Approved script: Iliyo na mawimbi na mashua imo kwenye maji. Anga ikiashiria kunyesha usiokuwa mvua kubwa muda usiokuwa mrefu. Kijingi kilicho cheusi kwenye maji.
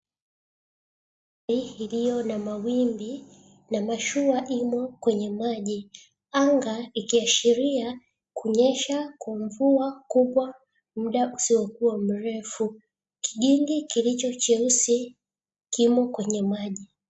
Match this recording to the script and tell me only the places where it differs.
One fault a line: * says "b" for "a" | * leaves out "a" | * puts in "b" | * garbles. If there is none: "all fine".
* says "kwa" for "usiokuwa"
* puts in "kimo"